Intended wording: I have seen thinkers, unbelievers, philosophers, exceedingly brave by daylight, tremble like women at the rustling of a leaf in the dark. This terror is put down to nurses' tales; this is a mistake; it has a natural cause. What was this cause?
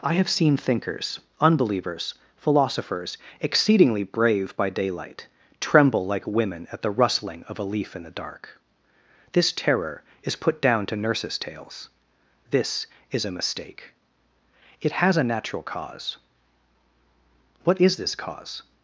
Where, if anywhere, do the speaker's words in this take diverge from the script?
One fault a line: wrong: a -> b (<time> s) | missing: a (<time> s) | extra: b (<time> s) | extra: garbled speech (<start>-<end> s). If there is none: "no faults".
wrong: was -> is (17.8 s)